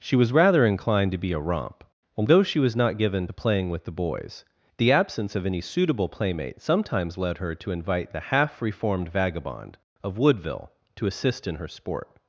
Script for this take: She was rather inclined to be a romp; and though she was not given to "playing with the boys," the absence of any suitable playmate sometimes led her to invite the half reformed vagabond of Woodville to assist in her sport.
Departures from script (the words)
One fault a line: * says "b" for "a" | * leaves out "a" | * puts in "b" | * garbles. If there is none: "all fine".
* says "although" for "and though"